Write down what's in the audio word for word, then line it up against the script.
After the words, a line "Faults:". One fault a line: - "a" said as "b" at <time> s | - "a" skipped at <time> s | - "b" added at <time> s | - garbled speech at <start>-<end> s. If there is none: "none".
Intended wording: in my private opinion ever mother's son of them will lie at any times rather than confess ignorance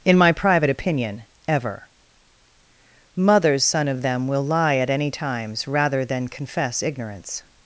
in my private opinion ever mother's son of them will lie at any times rather than confess ignorance
Faults:
none